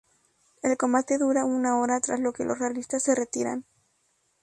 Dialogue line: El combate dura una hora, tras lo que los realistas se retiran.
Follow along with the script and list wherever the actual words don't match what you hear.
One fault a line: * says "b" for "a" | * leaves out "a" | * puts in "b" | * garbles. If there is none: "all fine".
all fine